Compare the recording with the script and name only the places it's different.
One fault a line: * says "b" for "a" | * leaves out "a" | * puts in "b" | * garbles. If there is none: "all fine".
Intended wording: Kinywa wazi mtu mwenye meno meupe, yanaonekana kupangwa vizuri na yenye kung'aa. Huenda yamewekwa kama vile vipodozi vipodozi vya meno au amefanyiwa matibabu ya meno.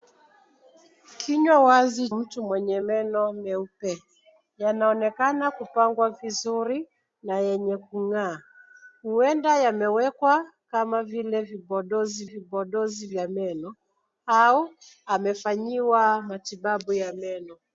all fine